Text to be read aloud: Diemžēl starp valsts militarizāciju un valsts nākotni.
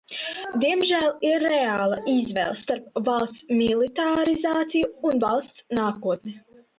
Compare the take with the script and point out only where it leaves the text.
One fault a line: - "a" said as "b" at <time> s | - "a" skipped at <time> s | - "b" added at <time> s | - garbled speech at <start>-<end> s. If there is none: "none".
- "ir reāla izvēle" added at 1.3 s